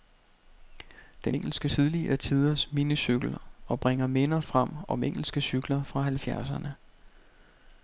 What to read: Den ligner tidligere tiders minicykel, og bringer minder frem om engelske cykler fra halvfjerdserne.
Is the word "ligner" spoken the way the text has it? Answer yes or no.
no